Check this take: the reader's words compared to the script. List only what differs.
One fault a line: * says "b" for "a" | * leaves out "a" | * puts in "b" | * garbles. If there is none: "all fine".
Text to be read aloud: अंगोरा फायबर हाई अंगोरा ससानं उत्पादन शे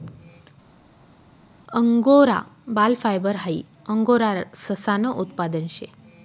* puts in "बाल"